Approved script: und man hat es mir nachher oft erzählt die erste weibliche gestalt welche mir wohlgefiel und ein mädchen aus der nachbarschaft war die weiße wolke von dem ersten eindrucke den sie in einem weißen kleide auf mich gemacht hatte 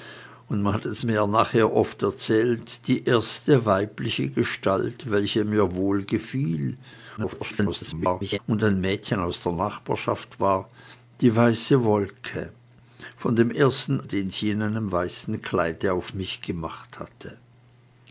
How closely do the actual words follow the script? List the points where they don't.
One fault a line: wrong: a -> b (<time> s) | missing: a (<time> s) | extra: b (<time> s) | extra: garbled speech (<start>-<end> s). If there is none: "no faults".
extra: garbled speech (7.2-8.4 s)
missing: eindrucke (14.1 s)